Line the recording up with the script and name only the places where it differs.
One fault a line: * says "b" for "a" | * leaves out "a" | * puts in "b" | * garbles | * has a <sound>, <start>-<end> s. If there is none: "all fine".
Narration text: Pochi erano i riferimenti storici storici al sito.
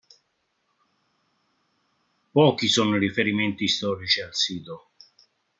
* says "sono" for "erano"
* leaves out "storici"